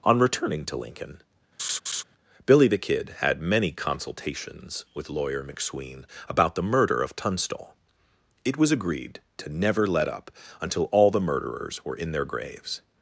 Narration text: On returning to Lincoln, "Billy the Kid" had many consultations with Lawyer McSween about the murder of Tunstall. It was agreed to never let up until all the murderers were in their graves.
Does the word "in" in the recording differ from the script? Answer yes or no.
no